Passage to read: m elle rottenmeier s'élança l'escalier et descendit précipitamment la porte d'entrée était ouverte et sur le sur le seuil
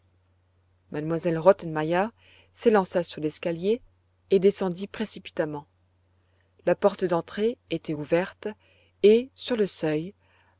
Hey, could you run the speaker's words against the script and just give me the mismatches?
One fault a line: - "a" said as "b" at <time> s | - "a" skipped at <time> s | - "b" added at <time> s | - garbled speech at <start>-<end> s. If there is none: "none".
- "sur" added at 3.0 s
- "sur le" skipped at 9.7 s